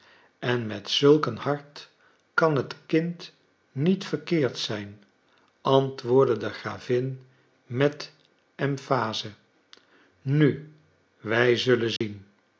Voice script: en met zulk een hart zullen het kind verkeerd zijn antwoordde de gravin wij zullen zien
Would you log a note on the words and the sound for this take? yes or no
yes